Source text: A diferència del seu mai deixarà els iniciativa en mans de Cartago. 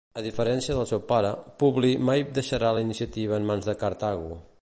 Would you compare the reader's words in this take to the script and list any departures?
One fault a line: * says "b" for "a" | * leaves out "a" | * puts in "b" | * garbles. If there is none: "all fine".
* puts in "pare Publi"
* says "la" for "els"